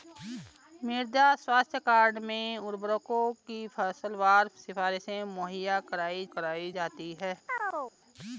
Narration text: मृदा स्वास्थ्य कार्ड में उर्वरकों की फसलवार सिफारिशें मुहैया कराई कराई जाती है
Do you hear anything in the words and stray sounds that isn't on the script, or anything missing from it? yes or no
yes